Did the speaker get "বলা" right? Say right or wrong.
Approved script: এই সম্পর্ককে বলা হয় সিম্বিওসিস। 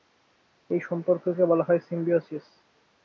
right